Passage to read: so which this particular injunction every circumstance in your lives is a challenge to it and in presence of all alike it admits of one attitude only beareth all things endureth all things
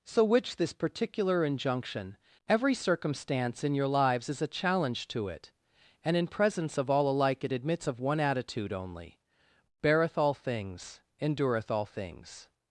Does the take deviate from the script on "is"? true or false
false